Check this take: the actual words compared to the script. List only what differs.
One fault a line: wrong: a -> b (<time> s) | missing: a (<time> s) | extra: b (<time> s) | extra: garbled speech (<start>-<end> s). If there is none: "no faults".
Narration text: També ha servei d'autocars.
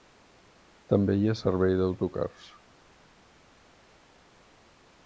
extra: hi (1.2 s)